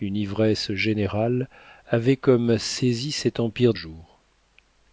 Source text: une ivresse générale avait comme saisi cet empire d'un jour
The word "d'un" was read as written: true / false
false